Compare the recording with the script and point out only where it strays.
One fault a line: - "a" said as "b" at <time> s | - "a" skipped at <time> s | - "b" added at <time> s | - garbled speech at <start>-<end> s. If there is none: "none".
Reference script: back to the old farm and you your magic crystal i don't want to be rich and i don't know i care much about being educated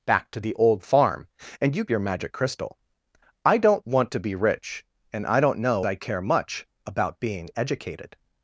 none